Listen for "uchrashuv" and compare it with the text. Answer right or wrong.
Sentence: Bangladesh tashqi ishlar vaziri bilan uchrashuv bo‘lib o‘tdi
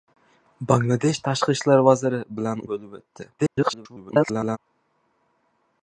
wrong